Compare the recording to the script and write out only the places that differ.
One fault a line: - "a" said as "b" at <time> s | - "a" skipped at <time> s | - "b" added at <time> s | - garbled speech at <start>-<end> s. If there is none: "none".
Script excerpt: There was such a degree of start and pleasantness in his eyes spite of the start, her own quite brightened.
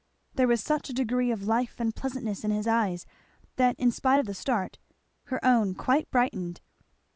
- "start" said as "life" at 1.4 s
- "that in" added at 3.6 s